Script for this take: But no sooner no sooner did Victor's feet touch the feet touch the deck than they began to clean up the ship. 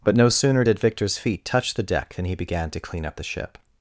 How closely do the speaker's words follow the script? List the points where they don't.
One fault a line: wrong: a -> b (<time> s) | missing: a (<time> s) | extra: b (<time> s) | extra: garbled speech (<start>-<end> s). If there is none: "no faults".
missing: no sooner (0.6 s)
missing: feet touch the (1.8 s)
wrong: they -> he (2.2 s)